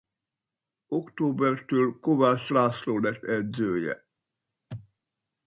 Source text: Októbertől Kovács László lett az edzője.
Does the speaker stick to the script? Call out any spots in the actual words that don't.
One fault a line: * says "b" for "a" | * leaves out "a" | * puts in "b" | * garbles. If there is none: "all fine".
* leaves out "az"